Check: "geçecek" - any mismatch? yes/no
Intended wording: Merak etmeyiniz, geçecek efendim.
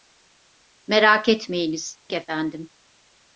yes